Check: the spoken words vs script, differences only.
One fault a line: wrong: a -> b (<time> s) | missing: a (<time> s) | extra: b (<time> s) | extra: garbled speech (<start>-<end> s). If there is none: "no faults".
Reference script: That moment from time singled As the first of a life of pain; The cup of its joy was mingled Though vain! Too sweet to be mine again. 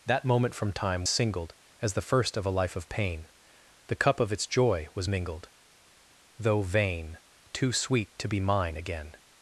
no faults